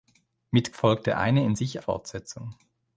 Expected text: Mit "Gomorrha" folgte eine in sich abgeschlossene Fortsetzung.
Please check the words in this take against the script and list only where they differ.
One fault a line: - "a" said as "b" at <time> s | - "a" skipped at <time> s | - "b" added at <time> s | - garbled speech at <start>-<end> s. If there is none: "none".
- "Gomorrha" skipped at 0.7 s
- "abgeschlossene" skipped at 1.8 s